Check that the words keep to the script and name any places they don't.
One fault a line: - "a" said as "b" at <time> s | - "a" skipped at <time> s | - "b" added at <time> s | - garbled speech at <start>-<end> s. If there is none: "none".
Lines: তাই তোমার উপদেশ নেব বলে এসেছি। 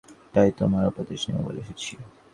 none